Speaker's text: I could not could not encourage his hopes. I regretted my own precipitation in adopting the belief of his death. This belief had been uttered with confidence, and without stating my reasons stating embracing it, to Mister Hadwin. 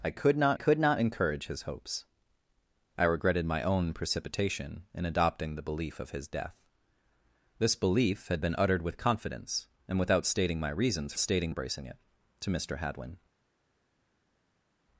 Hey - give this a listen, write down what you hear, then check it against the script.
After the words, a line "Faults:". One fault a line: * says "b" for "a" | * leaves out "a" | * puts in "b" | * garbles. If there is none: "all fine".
I could not could not encourage his hopes. I regretted my own precipitation in adopting the belief of his death. This belief had been uttered with confidence, and without stating my reasons stating embracing it, to Mister Hadwin.
Faults:
all fine